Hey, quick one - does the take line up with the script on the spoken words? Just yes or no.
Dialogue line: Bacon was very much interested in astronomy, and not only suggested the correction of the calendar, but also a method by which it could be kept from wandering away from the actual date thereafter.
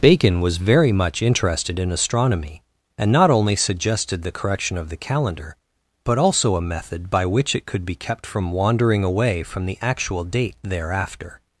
yes